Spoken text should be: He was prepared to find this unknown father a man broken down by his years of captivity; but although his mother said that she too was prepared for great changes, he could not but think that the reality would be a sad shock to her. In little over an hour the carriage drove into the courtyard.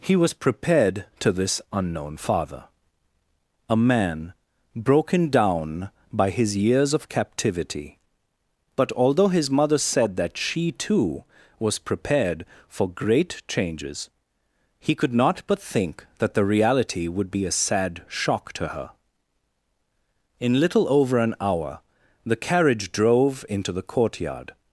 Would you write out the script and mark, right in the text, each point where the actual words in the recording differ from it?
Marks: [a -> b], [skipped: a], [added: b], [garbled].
He was prepared to [skipped: find] this unknown father a man broken down by his years of captivity; but although his mother said that she too was prepared for great changes, he could not but think that the reality would be a sad shock to her. In little over an hour the carriage drove into the courtyard.